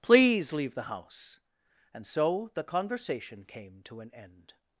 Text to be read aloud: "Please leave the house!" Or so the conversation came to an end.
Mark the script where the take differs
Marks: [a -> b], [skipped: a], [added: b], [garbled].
"Please leave the house!" [Or -> And] so the conversation came to an end.